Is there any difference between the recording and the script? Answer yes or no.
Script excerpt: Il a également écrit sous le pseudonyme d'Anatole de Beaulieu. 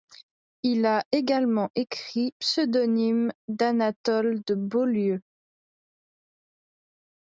yes